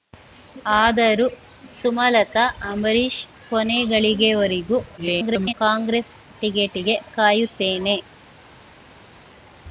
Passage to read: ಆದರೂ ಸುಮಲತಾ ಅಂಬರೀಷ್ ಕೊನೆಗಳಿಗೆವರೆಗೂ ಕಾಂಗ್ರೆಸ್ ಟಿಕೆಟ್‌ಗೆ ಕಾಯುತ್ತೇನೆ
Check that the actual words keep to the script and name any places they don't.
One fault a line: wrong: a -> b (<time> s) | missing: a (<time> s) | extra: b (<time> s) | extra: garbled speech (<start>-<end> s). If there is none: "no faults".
extra: garbled speech (5.0-5.5 s)